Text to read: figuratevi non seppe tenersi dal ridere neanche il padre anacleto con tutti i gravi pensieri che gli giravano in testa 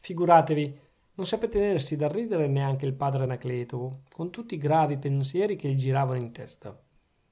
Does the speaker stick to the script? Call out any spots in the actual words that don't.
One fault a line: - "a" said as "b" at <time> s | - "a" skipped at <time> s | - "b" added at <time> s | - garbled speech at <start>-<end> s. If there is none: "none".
none